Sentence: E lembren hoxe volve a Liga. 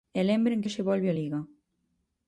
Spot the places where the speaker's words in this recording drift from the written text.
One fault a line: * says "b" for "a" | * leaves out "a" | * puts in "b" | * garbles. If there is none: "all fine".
all fine